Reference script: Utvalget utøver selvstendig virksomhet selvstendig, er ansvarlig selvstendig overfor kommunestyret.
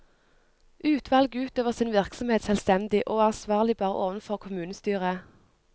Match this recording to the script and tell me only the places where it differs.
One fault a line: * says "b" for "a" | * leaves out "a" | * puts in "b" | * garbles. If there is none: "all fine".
* says "sin" for "selvstendig"
* puts in "og"
* says "bare" for "selvstendig"